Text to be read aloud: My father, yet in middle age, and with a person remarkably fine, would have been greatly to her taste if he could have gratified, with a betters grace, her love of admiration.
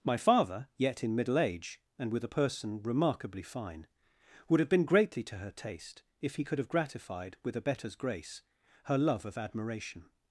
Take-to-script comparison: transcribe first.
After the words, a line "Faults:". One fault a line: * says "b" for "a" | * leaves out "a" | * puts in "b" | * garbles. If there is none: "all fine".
My father, yet in middle age, and with a person remarkably fine, would have been greatly to her taste if he could have gratified, with a betters grace, her love of admiration.
Faults:
all fine